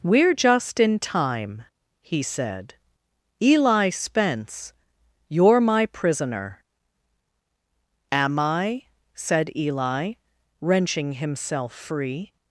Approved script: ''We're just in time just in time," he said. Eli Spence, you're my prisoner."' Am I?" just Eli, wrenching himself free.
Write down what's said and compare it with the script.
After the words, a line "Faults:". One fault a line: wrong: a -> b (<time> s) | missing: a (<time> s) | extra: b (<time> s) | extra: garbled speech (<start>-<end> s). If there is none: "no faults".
''We're just in time," he said. Eli Spence, you're my prisoner."' Am I?" said Eli, wrenching himself free.
Faults:
missing: just in time (1.6 s)
wrong: just -> said (9.1 s)